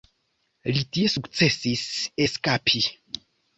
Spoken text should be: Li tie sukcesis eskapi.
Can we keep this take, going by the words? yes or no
yes